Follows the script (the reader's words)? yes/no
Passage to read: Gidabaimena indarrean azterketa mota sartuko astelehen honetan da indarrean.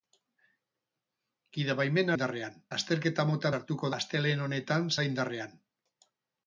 yes